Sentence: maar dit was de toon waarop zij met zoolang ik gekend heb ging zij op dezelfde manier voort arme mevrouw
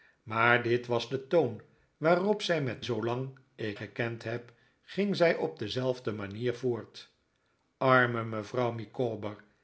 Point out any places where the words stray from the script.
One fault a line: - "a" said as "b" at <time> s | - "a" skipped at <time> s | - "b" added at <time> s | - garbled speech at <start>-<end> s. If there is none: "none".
none